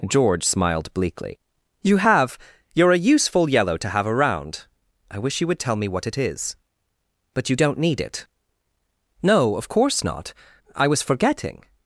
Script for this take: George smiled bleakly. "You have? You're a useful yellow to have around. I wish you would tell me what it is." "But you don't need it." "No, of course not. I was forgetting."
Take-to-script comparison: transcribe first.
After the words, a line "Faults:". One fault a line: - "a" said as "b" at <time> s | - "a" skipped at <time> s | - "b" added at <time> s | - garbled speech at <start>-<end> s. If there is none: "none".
George smiled bleakly. "You have? You're a useful yellow to have around. I wish you would tell me what it is." "But you don't need it." "No, of course not. I was forgetting."
Faults:
none